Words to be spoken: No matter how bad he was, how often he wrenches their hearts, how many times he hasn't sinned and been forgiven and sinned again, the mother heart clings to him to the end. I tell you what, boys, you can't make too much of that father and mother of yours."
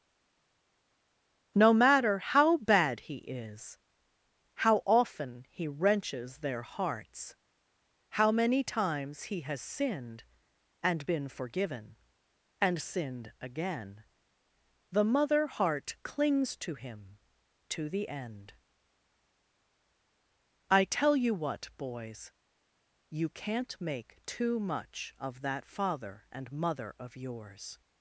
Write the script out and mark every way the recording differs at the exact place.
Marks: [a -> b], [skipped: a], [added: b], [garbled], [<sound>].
No matter how bad he [was, -> is] how often he wrenches their hearts, how many times he [hasn't -> has] sinned and been forgiven and sinned again, the mother heart clings to him to the end. I tell you what, boys, you can't make too much of that father and mother of yours."